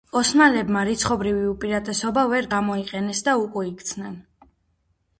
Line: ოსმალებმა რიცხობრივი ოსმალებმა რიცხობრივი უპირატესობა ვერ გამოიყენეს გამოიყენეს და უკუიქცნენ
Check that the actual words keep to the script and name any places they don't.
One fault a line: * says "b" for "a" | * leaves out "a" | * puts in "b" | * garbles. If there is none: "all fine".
* leaves out "ოსმალებმა რიცხობრივი"
* leaves out "გამოიყენეს"